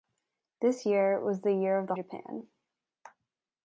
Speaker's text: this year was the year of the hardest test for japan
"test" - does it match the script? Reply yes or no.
no